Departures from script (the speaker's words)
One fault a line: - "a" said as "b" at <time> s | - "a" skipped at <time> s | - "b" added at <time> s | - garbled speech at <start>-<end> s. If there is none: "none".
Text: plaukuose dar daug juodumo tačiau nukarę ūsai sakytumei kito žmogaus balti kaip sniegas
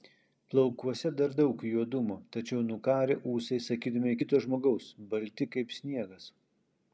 none